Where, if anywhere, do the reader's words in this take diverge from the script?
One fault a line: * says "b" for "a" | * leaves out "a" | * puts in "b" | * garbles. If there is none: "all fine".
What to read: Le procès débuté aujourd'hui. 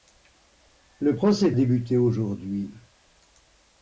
all fine